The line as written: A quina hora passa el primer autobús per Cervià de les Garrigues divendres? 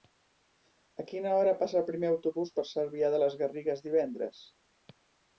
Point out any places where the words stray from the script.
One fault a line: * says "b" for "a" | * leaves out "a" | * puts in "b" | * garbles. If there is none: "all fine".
all fine